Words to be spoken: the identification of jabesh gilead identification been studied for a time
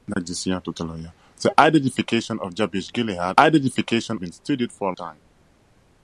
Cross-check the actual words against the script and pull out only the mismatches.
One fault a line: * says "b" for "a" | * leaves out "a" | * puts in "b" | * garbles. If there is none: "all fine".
all fine